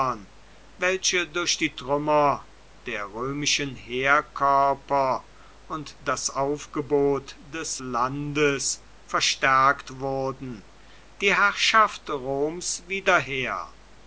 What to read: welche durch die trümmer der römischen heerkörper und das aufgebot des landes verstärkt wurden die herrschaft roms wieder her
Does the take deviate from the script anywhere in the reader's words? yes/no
no